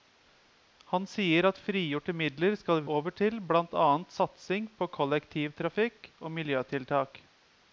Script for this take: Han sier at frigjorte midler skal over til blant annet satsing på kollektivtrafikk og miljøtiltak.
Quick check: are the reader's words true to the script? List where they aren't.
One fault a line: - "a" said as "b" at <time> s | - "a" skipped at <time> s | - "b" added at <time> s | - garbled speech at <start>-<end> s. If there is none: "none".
none